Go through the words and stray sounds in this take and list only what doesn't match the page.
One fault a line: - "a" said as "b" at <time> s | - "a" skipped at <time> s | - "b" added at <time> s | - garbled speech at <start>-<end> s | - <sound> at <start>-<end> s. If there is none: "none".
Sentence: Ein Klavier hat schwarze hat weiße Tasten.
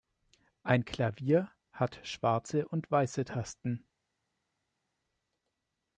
- "hat" said as "und" at 2.7 s